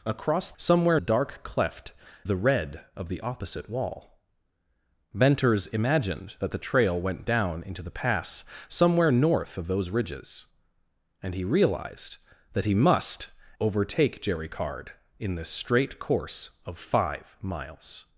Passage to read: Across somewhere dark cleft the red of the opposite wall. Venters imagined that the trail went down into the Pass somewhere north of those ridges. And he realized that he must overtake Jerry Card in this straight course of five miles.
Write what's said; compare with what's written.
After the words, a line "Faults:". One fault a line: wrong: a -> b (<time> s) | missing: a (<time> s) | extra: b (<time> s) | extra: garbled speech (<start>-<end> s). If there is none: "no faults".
Across somewhere dark cleft the red of the opposite wall. Venters imagined that the trail went down into the Pass somewhere north of those ridges. And he realized that he must overtake Jerry Card in this straight course of five miles.
Faults:
no faults